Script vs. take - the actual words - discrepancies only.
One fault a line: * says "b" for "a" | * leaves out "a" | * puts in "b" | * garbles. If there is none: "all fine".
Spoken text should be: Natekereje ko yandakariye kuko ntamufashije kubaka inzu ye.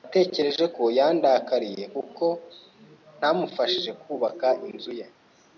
all fine